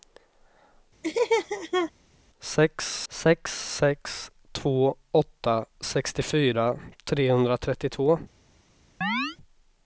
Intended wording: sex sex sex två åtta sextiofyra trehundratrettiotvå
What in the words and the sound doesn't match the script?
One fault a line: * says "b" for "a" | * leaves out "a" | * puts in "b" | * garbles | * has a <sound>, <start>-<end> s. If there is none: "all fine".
* has a laugh, 1.0-1.9 s
* has a chirp, 9.0-9.4 s